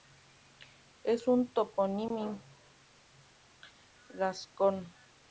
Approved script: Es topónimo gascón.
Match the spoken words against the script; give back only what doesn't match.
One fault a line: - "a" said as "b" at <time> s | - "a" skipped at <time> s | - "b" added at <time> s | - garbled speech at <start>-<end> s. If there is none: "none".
- "un" added at 1.3 s